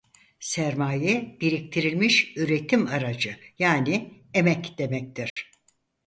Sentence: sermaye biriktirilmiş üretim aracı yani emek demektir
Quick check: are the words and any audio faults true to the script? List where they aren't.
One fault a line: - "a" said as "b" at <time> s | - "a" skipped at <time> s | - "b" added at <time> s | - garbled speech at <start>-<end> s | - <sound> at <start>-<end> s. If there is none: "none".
- dropout at 5.3-5.4 s